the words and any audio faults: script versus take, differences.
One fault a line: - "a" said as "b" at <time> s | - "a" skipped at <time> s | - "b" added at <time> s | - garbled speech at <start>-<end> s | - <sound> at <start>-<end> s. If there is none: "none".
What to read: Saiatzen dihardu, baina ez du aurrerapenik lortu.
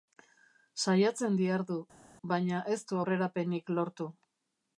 none